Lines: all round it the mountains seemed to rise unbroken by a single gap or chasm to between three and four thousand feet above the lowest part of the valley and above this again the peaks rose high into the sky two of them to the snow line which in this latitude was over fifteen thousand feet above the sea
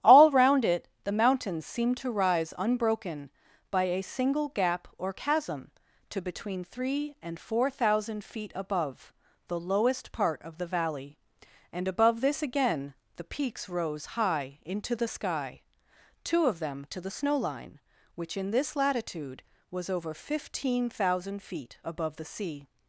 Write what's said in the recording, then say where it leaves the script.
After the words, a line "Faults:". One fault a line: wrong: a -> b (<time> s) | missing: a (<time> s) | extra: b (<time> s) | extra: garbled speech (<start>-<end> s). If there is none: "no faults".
all round it the mountains seemed to rise unbroken by a single gap or chasm to between three and four thousand feet above the lowest part of the valley and above this again the peaks rose high into the sky two of them to the snow line which in this latitude was over fifteen thousand feet above the sea
Faults:
no faults